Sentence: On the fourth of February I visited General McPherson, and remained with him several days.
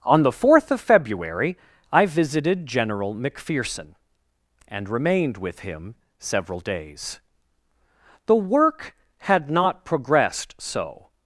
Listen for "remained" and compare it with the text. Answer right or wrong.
right